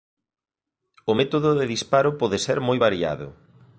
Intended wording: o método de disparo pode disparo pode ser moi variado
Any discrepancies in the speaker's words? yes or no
yes